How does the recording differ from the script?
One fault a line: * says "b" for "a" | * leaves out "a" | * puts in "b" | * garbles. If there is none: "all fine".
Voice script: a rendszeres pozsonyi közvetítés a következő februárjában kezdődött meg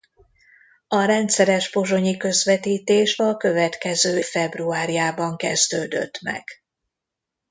all fine